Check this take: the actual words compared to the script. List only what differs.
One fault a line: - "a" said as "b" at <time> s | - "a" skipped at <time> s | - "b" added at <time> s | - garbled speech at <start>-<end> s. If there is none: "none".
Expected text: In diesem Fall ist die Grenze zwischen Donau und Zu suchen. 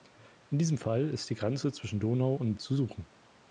none